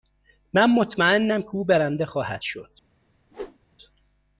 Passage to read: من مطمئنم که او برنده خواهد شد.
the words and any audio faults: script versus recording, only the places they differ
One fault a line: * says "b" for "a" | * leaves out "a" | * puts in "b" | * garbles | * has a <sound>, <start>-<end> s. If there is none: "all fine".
* has a whoosh, 3.3-3.6 s